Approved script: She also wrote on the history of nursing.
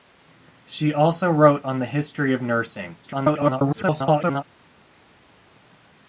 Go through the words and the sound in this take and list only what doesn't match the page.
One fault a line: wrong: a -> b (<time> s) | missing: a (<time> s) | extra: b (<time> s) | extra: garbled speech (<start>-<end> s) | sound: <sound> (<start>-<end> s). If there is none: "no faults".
extra: garbled speech (3.0-4.4 s)